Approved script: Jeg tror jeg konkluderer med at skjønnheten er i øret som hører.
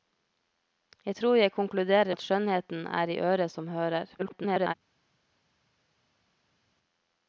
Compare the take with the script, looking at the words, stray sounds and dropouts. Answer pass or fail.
fail